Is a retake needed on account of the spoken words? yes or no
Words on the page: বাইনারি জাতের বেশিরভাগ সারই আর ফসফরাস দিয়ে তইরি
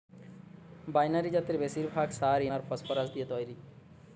no